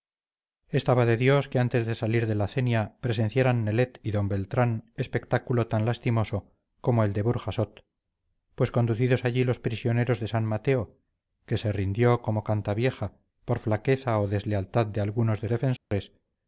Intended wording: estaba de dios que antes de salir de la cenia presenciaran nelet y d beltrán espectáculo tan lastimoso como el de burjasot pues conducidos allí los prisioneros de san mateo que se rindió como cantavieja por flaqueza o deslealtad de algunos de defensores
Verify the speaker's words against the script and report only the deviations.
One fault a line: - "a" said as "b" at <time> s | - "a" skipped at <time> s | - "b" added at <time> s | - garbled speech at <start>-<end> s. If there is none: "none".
none